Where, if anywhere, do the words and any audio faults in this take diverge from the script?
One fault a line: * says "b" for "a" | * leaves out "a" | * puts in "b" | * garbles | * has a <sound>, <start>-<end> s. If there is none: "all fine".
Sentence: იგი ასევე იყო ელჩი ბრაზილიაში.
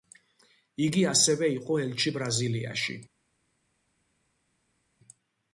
all fine